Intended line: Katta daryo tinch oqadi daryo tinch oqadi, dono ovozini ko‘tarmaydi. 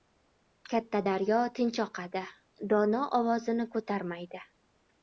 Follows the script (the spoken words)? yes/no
no